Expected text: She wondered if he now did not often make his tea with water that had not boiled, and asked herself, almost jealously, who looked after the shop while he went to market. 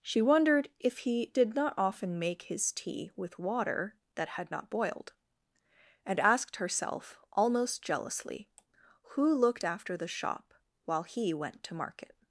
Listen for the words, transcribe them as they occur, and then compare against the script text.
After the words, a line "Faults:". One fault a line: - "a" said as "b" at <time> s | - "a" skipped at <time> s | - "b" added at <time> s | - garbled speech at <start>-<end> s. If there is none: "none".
She wondered if he did not often make his tea with water that had not boiled, and asked herself, almost jealously, who looked after the shop while he went to market.
Faults:
- "now" skipped at 1.3 s